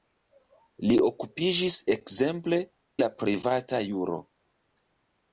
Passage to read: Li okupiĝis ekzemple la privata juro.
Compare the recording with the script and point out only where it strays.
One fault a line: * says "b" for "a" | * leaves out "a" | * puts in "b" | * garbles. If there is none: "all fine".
all fine